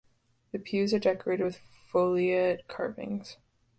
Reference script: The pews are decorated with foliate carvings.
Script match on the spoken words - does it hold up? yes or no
yes